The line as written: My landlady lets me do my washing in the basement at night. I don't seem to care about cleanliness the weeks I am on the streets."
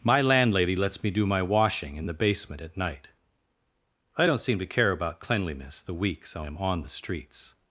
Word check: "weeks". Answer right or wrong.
right